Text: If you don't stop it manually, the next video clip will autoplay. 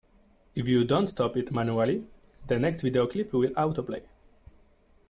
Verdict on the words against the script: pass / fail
pass